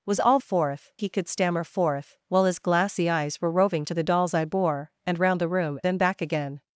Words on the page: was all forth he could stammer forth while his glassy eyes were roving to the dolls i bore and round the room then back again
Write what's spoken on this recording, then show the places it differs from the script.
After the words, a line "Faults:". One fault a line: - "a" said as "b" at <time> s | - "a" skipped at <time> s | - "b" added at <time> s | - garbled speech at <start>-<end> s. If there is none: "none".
was all forth he could stammer forth while his glassy eyes were roving to the dolls i bore and round the room then back again
Faults:
none